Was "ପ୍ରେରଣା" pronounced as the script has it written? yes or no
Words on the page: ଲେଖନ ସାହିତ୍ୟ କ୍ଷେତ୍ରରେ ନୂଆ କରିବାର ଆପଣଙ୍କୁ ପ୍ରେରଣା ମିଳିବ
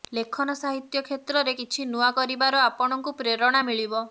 yes